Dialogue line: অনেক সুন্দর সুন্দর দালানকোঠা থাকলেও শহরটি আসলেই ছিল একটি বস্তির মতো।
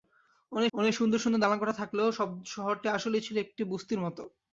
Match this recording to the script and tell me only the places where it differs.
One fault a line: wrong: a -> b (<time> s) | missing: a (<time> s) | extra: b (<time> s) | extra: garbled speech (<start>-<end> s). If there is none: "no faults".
extra: অনেক (0.7 s)